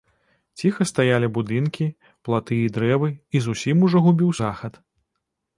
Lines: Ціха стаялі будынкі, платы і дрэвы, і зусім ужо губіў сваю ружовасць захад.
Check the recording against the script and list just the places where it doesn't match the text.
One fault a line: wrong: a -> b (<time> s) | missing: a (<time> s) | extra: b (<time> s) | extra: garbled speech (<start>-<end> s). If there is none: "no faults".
missing: сваю ружовасць (4.3 s)